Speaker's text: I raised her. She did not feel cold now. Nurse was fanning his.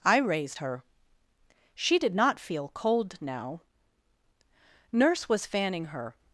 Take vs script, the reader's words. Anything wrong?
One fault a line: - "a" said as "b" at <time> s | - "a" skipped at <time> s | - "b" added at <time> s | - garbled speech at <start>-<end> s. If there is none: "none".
- "his" said as "her" at 5.9 s